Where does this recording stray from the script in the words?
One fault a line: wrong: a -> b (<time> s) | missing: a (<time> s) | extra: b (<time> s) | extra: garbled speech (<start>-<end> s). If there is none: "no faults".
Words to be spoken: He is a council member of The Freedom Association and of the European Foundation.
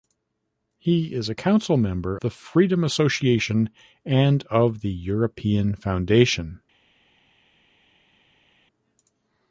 missing: of (2.2 s)